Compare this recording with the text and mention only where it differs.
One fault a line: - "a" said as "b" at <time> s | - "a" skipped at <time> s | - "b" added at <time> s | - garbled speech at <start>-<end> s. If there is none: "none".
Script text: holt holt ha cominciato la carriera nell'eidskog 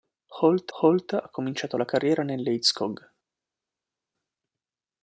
none